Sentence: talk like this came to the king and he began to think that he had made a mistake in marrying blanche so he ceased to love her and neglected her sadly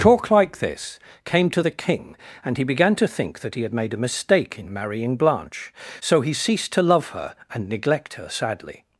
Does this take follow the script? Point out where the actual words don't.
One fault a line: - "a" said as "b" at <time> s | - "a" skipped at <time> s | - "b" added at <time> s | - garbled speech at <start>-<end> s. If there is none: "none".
- "neglected" said as "neglect" at 7.7 s